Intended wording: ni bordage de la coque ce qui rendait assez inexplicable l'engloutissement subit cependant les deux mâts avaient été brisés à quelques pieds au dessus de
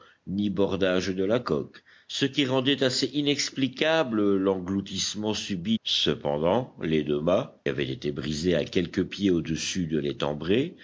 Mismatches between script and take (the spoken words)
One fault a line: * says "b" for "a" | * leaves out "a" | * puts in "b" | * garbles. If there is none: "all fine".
all fine